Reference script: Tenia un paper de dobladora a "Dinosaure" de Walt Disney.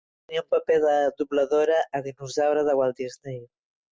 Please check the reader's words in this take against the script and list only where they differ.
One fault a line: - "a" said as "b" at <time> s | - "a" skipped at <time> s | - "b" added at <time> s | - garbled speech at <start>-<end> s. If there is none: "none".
none